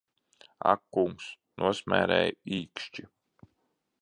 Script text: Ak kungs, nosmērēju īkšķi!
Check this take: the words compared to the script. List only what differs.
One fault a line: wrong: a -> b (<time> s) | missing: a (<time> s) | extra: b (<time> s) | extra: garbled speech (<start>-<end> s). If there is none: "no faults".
no faults